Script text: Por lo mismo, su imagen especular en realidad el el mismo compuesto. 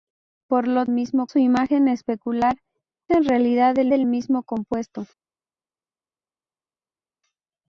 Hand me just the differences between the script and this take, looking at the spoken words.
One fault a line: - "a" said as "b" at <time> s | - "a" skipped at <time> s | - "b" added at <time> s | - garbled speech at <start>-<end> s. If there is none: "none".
none